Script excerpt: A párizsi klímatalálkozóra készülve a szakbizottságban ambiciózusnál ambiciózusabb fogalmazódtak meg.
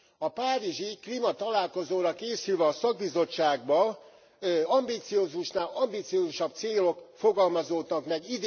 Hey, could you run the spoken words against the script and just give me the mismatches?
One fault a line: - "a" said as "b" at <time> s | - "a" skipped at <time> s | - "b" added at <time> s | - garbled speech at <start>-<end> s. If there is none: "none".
- "célok" added at 6.5 s